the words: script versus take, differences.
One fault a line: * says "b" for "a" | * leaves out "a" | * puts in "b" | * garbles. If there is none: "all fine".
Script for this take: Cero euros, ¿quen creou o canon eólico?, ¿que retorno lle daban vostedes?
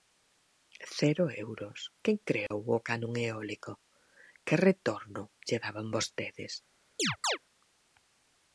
all fine